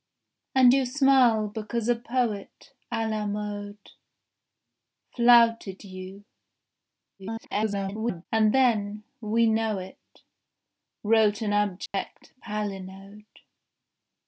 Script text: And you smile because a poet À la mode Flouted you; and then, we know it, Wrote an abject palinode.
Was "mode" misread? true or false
false